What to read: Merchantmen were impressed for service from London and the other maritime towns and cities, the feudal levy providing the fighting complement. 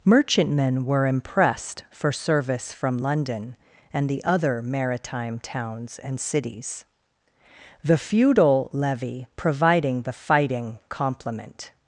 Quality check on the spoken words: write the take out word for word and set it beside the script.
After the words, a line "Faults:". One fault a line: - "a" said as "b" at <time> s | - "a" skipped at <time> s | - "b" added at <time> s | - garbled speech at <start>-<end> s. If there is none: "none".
Merchantmen were impressed for service from London and the other maritime towns and cities, the feudal levy providing the fighting complement.
Faults:
none